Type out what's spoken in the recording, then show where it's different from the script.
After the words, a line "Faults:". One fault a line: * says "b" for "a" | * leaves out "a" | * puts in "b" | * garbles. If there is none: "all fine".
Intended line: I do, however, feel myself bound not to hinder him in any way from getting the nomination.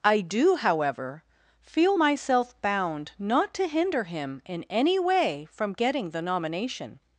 I do, however, feel myself bound not to hinder him in any way from getting the nomination.
Faults:
all fine